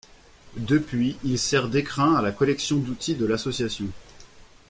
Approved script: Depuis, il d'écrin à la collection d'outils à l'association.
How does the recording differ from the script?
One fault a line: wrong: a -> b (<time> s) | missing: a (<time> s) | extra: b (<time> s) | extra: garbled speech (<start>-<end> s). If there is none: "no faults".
extra: sert (1.4 s)
wrong: à -> de (3.1 s)